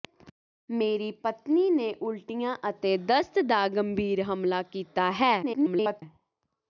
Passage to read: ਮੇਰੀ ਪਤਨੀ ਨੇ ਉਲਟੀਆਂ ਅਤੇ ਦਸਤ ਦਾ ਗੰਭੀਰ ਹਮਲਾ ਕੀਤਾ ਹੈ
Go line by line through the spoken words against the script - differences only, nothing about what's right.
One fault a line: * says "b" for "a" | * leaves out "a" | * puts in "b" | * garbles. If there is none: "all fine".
* garbles